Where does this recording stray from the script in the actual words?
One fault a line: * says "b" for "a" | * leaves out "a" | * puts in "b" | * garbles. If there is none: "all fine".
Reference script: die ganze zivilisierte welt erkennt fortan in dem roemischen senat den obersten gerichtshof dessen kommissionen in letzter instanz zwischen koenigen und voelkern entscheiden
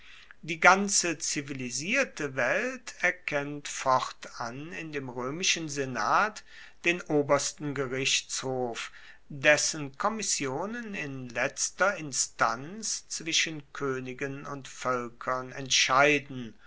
all fine